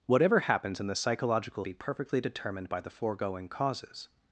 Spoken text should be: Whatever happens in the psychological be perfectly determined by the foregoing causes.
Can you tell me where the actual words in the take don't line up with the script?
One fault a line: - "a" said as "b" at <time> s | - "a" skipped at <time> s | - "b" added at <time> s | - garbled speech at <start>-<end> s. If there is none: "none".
none